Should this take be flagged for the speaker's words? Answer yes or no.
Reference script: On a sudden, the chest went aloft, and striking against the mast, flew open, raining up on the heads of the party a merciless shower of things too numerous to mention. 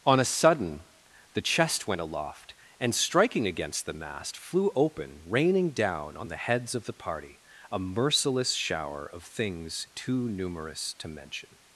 yes